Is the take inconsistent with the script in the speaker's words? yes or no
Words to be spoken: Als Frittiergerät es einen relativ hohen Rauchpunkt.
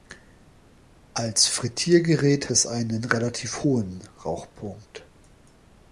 no